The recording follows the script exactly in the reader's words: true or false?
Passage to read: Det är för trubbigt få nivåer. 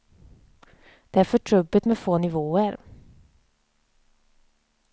false